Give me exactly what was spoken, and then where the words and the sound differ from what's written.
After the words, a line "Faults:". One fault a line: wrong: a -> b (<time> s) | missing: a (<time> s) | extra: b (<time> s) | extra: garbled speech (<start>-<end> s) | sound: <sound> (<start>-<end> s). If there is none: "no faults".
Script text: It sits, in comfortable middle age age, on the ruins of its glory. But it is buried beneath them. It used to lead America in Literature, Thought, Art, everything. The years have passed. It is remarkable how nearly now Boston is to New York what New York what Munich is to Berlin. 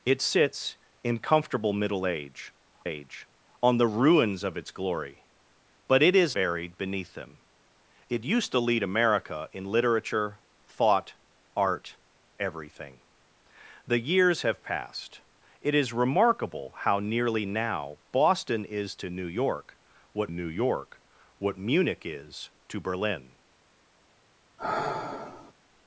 It sits, in comfortable middle age age, on the ruins of its glory. But it is buried beneath them. It used to lead America in Literature, Thought, Art, everything. The years have passed. It is remarkable how nearly now Boston is to New York what New York what Munich is to Berlin.
Faults:
sound: sigh (24.6-25.5 s)